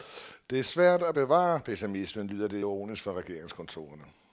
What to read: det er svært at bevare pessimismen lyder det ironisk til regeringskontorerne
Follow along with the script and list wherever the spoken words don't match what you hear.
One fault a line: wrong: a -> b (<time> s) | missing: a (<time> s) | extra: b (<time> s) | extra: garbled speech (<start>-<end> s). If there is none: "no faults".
wrong: til -> fra (3.0 s)